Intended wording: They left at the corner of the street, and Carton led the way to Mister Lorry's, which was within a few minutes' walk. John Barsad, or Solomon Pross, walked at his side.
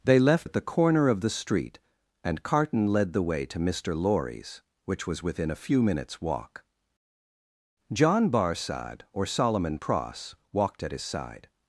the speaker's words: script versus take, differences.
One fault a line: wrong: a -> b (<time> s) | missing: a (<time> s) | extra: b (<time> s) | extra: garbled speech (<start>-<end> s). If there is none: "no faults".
no faults